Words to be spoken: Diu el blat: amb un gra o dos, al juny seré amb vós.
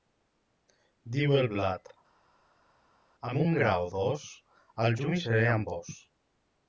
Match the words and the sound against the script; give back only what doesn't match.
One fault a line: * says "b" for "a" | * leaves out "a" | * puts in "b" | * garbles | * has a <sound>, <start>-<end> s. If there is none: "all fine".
all fine